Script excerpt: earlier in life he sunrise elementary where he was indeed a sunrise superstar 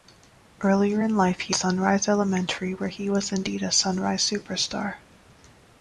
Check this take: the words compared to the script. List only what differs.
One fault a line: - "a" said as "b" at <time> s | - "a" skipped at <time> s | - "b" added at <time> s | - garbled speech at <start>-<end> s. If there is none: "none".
none